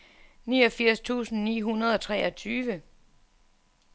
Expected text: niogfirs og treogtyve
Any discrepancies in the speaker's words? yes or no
yes